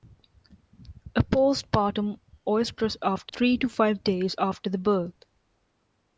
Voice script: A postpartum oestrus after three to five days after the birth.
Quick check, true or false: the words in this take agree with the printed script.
true